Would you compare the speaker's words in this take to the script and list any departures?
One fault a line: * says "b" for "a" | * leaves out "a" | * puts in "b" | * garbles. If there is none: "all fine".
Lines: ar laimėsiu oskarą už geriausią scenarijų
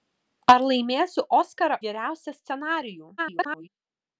* leaves out "už"
* garbles